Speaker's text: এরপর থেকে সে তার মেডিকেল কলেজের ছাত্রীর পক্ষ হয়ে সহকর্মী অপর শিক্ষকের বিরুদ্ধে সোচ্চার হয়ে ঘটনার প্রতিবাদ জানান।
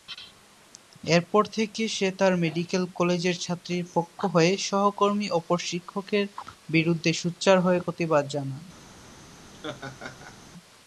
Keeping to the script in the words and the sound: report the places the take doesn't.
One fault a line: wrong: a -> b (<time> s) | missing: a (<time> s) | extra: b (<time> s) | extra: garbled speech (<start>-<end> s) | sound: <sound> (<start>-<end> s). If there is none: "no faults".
missing: ঘটনার (7.8 s)
sound: laugh (9.5-10.4 s)